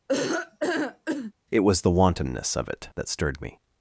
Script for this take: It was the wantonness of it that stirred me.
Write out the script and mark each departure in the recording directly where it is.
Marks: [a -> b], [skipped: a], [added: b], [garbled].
It was the wantonness of it that stirred me.